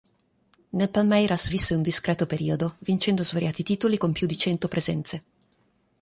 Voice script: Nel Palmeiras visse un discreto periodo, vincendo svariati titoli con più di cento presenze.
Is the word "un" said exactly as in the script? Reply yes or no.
yes